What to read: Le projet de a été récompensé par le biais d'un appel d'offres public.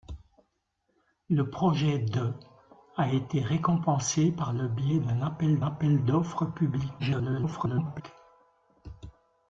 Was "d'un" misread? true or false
false